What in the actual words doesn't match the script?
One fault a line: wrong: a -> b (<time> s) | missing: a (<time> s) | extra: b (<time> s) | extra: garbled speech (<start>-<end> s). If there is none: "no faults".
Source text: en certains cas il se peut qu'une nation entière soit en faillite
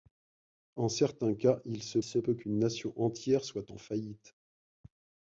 extra: se (2.0 s)